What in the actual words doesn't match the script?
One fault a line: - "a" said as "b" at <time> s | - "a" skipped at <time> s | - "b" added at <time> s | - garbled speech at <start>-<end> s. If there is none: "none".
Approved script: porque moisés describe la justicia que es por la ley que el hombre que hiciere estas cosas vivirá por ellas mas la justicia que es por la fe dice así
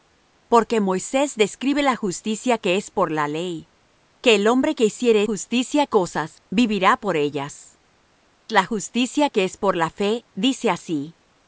- "estas" said as "justicia" at 5.2 s
- "mas" skipped at 7.8 s